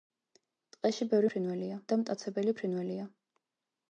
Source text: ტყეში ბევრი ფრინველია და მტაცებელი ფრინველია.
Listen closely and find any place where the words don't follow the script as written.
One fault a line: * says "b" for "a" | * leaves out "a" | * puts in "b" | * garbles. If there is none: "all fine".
all fine